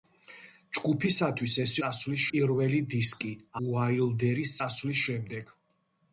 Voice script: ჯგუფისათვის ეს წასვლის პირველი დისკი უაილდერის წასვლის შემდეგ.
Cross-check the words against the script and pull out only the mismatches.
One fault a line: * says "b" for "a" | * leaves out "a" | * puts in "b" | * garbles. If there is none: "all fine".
all fine